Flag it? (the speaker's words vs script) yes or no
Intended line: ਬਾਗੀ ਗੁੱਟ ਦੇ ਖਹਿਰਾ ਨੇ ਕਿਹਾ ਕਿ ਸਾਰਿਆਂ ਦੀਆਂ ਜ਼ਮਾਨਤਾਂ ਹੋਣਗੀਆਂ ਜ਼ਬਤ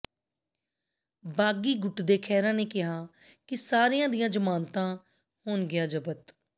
no